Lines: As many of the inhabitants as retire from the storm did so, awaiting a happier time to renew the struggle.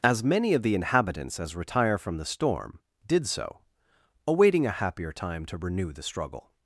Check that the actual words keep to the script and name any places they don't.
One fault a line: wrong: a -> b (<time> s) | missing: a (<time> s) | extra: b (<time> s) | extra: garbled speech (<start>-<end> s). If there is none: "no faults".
no faults